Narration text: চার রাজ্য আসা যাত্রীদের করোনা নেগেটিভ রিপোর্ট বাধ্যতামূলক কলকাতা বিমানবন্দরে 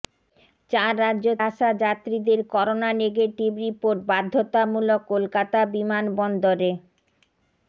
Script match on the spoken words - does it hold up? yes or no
yes